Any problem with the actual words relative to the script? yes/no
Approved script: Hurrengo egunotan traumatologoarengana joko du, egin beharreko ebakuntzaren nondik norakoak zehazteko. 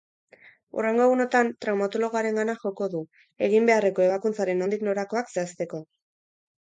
no